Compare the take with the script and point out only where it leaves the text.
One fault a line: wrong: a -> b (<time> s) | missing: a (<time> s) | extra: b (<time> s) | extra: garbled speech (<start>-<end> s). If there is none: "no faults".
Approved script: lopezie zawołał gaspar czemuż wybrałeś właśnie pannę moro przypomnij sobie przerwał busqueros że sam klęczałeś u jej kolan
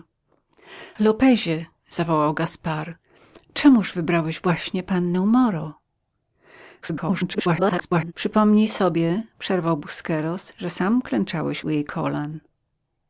extra: garbled speech (6.8-8.1 s)